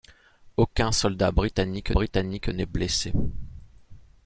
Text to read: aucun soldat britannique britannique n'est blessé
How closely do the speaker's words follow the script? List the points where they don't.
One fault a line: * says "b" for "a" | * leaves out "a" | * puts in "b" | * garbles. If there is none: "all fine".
all fine